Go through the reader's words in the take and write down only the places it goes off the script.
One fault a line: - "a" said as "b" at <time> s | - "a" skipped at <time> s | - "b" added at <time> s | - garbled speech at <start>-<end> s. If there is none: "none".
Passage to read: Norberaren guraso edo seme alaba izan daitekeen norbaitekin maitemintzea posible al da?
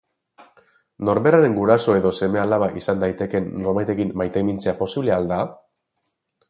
none